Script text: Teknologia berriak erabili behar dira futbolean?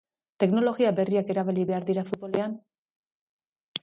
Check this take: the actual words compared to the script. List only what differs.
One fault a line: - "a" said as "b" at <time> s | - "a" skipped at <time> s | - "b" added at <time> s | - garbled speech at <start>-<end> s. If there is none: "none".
none